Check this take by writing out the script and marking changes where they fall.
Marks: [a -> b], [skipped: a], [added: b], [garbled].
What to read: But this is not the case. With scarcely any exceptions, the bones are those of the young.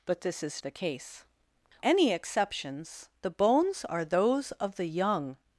But this is [skipped: not] the case. [skipped: With scarcely] any exceptions, the bones are those of the young.